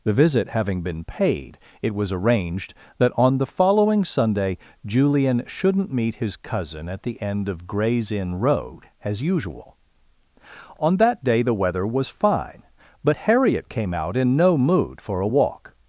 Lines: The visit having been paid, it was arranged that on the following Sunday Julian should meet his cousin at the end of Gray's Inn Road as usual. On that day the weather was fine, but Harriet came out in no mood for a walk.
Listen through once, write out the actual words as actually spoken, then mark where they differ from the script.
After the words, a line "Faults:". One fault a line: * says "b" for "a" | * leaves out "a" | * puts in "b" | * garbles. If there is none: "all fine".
The visit having been paid, it was arranged that on the following Sunday Julian shouldn't meet his cousin at the end of Gray's Inn Road as usual. On that day the weather was fine, but Harriet came out in no mood for a walk.
Faults:
* says "shouldn't" for "should"